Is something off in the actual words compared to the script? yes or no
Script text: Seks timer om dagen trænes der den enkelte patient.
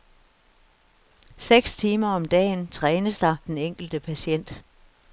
no